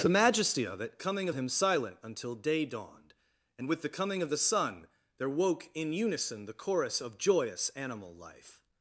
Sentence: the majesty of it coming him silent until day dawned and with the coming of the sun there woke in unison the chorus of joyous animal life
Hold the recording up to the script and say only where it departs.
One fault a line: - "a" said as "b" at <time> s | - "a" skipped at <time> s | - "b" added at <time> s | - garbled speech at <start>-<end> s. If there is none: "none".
none